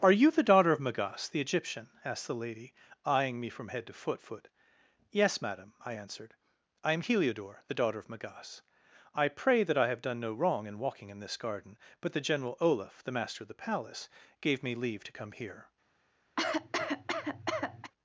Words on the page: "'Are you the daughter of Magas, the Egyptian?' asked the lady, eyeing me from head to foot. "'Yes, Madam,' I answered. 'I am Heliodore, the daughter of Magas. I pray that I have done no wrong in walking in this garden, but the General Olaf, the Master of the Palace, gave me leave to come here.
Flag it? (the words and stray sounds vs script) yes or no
yes